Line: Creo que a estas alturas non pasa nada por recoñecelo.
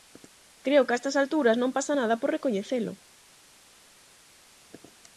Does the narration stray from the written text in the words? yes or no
no